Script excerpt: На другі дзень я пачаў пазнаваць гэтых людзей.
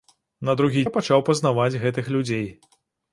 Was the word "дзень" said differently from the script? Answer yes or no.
yes